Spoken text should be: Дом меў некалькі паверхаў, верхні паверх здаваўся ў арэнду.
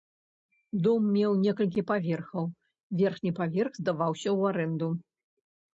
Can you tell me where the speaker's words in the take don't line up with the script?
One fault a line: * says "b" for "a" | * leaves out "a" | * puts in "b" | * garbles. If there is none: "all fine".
all fine